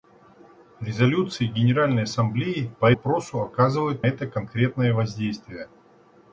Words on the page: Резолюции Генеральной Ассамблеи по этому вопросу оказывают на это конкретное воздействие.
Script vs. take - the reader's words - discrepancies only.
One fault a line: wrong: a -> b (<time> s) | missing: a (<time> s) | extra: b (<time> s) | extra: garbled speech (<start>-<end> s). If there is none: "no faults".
missing: этому (2.9 s)
missing: на (4.0 s)